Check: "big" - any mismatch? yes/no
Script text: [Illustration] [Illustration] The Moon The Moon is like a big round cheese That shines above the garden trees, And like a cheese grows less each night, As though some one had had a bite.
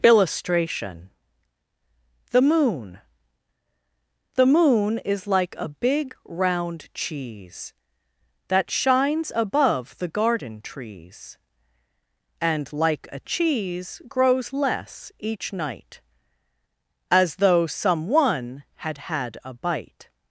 no